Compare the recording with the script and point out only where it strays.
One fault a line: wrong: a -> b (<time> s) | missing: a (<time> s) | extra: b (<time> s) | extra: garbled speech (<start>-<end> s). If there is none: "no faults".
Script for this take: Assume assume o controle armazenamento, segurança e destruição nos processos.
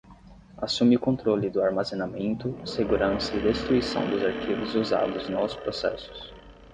missing: assume (0.9 s)
extra: do (1.5 s)
extra: dos arquivos usados (4.1 s)